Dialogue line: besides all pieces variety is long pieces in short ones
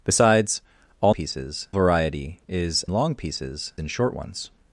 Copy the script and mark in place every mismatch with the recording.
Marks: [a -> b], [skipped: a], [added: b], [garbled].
besides all pieces variety is long pieces in short ones